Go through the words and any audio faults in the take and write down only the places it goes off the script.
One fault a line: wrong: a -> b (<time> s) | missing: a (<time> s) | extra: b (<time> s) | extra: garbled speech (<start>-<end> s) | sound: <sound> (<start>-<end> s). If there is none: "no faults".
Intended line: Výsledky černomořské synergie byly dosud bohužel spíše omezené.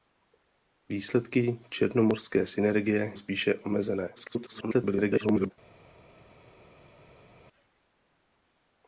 missing: byly dosud bohužel (3.1 s)
extra: garbled speech (4.2-5.5 s)